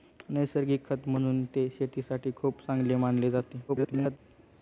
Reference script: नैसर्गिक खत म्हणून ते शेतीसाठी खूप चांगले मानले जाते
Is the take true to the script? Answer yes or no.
no